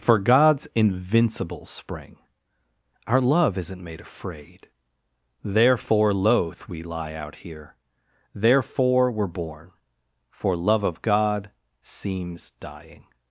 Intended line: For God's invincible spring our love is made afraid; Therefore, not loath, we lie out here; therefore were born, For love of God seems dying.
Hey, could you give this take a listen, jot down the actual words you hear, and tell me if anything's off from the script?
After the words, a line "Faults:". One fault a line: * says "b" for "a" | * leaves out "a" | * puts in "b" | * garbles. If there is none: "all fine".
For God's invincible spring our love isn't made afraid; Therefore, loath, we lie out here; therefore were born, For love of God seems dying.
Faults:
* says "isn't" for "is"
* leaves out "not"